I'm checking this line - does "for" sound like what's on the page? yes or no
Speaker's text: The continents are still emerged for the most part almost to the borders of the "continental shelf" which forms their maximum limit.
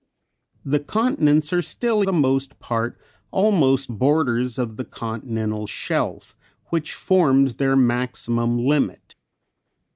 no